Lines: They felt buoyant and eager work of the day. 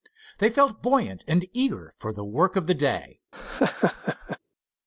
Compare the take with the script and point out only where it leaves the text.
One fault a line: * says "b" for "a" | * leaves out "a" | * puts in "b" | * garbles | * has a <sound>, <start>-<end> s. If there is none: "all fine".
* puts in "for the"
* has a laugh, 3.3-4.4 s